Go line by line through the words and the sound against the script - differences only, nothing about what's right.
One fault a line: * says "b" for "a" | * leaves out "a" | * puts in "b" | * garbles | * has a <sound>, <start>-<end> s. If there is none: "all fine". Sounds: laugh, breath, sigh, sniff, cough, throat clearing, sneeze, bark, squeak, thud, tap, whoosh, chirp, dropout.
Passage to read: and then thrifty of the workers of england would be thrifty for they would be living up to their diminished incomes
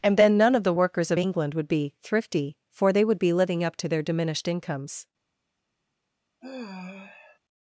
* says "none" for "thrifty"
* has a sigh, 6.4-7.4 s